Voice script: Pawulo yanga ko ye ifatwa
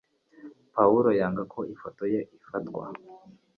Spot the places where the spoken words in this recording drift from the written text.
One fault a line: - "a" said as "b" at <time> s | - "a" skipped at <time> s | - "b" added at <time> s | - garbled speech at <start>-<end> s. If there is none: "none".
- "ifoto" added at 1.7 s